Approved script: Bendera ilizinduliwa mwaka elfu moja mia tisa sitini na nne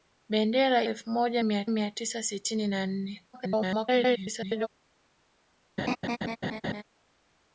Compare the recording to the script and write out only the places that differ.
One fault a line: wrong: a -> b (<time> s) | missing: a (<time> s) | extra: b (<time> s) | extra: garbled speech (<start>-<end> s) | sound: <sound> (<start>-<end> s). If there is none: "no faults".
missing: ilizinduliwa mwaka (0.8 s)
extra: mia (1.7 s)
extra: garbled speech (3.3-4.7 s)
sound: laugh (5.8-6.8 s)